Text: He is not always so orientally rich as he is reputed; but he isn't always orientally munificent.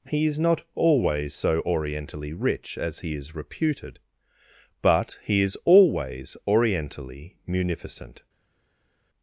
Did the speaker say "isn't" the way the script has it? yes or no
no